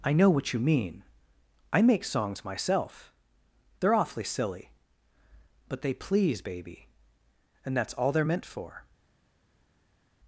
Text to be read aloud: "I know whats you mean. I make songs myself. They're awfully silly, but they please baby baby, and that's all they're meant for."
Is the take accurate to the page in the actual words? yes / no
no